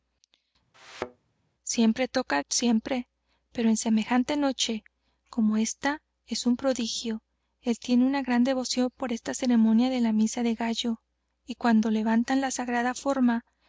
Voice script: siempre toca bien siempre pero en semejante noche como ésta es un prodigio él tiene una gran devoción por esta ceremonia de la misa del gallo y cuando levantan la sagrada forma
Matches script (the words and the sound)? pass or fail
fail